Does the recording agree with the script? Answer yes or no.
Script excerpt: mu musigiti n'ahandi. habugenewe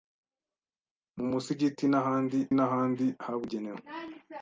no